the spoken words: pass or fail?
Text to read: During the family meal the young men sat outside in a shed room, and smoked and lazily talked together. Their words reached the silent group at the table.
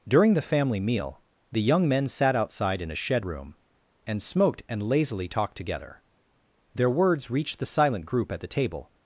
pass